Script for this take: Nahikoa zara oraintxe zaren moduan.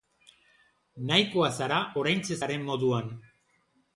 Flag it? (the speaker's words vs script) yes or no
no